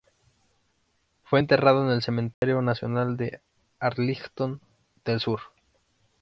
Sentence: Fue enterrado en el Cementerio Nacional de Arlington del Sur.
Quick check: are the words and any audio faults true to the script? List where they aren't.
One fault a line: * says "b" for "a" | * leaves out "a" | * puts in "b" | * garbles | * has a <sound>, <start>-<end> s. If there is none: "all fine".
* has a dropout, 2.3-2.4 s